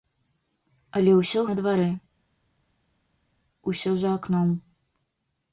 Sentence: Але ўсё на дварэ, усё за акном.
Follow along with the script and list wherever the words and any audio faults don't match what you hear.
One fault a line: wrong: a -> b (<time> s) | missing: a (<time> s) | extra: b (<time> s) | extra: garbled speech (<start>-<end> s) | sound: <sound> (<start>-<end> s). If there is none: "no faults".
no faults